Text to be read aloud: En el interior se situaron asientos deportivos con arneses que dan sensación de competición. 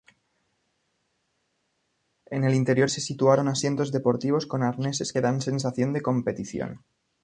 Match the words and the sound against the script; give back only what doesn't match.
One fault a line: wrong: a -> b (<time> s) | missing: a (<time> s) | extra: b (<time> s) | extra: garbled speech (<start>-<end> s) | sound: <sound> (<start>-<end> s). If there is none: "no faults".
no faults